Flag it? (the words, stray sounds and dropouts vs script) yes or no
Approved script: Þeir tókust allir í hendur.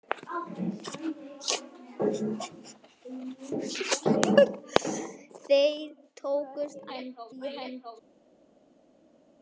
yes